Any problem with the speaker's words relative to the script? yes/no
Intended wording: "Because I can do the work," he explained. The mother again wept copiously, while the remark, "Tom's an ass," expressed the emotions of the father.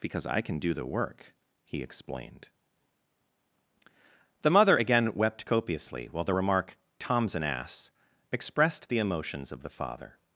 no